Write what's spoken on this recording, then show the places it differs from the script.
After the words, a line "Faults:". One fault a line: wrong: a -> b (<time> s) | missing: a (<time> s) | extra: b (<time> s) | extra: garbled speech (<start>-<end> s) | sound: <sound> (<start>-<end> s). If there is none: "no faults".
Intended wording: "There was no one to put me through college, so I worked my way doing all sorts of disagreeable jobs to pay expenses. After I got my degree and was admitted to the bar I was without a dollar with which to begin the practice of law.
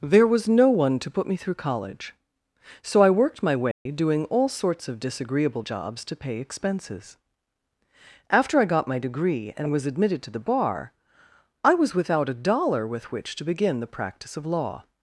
"There was no one to put me through college, so I worked my way doing all sorts of disagreeable jobs to pay expenses. After I got my degree and was admitted to the bar I was without a dollar with which to begin the practice of law.
Faults:
sound: dropout (3.7-3.9 s)